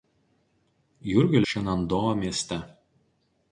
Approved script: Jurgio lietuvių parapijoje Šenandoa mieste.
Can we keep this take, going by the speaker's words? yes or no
no